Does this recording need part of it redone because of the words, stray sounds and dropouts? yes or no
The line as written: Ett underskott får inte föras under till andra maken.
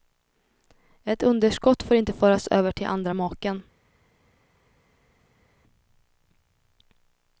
yes